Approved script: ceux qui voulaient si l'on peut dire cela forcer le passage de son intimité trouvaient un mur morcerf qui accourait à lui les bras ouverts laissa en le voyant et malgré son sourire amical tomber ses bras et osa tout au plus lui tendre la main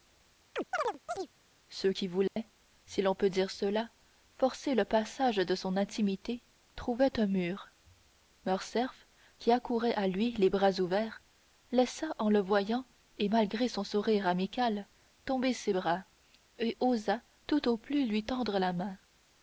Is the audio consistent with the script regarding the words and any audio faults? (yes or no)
no